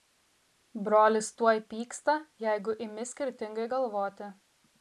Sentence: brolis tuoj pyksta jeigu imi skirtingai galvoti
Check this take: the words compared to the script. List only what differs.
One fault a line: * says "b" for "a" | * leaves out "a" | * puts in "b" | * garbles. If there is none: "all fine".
all fine